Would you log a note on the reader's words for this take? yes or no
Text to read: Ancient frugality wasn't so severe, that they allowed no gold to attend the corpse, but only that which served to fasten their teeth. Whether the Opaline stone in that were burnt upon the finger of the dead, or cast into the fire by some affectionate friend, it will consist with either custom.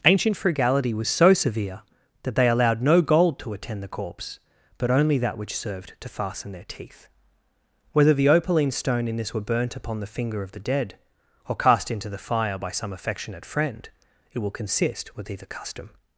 yes